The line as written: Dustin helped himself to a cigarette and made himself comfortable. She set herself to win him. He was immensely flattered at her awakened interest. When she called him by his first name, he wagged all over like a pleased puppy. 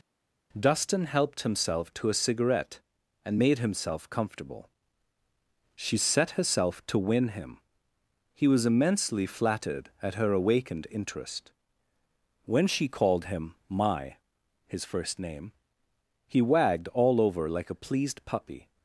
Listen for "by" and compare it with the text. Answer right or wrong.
wrong